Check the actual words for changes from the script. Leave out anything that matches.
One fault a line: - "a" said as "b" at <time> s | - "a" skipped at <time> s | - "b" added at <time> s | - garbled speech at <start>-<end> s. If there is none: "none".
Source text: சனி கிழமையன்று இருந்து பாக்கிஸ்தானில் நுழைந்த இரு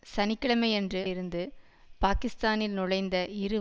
none